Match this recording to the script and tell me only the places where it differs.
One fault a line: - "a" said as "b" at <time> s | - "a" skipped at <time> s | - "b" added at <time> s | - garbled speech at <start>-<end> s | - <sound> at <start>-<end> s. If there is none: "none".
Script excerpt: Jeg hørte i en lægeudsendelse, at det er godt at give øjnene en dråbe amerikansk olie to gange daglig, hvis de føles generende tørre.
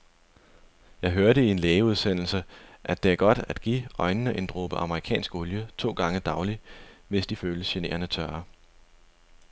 none